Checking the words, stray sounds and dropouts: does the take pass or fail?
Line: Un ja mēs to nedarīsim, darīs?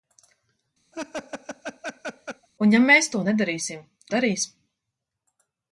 fail